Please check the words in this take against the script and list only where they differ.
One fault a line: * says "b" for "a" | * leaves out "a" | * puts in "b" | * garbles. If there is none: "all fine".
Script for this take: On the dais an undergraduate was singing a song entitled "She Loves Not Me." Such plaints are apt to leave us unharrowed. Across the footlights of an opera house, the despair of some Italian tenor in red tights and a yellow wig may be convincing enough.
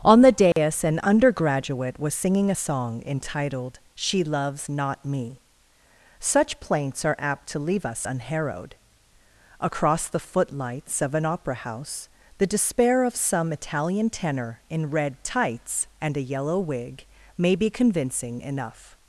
all fine